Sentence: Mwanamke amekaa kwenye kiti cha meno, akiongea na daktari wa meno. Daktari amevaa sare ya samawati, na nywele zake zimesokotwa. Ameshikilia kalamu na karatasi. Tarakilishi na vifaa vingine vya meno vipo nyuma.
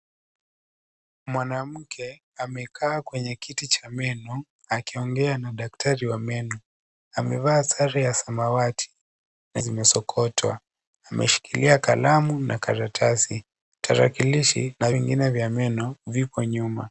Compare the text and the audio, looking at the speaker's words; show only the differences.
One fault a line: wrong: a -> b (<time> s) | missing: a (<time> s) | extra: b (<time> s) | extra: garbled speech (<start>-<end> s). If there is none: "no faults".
missing: Daktari (6.6 s)
missing: nywele zake (9.6 s)
missing: vifaa (14.9 s)